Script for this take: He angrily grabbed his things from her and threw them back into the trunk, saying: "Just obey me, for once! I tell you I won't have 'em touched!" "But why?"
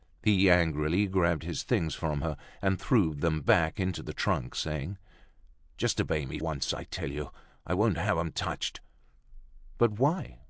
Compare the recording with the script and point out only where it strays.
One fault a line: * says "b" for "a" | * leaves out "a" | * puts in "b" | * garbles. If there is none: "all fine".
* leaves out "for"